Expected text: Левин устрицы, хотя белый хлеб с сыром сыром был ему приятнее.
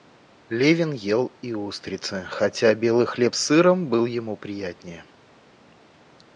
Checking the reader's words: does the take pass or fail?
fail